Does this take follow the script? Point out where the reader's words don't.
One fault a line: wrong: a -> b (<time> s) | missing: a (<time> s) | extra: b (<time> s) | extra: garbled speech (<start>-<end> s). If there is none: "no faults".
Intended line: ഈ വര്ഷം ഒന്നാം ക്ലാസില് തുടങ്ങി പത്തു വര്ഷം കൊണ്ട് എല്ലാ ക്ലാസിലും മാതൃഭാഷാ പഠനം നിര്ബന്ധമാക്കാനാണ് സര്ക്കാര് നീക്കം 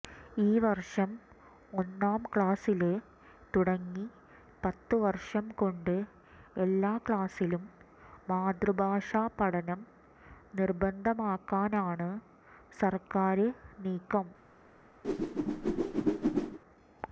no faults